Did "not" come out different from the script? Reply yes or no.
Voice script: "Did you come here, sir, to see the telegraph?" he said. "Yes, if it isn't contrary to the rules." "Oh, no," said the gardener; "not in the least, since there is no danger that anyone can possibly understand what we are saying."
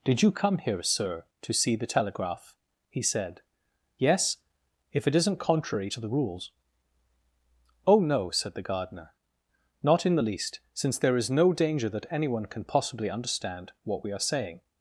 no